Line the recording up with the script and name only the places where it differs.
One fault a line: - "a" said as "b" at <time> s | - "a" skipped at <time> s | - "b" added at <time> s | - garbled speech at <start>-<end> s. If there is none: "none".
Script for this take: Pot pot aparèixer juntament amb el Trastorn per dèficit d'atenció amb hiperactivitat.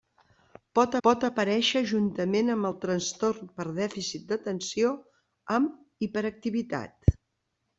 none